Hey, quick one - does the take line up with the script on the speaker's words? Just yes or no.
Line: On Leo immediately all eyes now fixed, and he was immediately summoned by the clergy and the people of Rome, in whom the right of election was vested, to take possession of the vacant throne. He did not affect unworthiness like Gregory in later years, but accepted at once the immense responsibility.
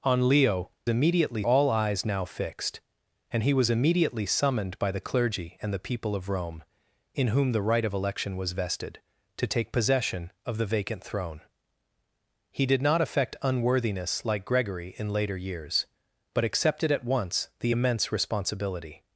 yes